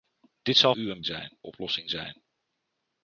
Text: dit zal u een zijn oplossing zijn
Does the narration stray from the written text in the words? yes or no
no